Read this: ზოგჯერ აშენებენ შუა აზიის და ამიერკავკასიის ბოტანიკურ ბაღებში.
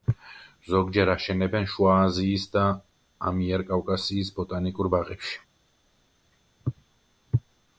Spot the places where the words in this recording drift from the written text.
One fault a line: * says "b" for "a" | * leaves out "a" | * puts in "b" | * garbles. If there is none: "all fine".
all fine